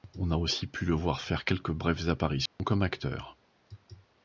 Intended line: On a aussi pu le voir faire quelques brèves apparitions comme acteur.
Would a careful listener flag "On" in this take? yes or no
no